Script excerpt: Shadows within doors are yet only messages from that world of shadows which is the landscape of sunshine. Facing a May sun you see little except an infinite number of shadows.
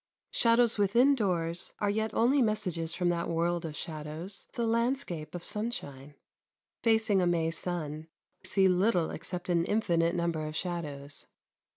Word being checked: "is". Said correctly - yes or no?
no